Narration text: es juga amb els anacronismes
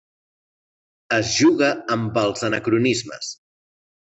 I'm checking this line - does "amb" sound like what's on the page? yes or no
yes